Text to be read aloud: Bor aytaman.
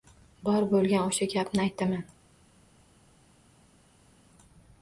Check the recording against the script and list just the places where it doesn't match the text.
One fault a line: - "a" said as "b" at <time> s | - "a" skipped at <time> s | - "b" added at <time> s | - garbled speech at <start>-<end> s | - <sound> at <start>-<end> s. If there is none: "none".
- "bo‘lgan o‘sha gapni" added at 0.7 s